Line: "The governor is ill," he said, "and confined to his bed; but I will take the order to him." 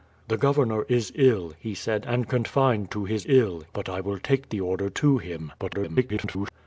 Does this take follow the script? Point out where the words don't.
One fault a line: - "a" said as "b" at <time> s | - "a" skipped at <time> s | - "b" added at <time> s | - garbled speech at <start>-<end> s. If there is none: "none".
- "bed" said as "ill" at 3.2 s
- garbled speech at 5.6-6.5 s